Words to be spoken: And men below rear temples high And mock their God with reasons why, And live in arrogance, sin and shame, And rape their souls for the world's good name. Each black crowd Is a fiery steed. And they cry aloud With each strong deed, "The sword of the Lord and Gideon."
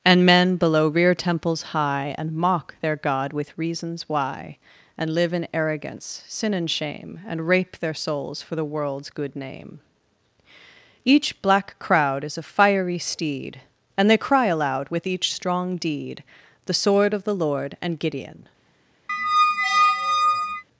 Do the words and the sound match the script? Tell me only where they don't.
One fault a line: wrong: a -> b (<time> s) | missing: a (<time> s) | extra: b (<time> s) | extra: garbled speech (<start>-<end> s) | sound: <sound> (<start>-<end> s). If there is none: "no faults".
sound: squeak (19.1-20.6 s)